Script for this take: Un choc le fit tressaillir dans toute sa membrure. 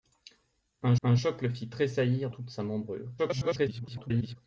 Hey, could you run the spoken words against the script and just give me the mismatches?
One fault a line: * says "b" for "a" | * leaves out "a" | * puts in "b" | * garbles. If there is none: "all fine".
* puts in "un"
* leaves out "dans"
* garbles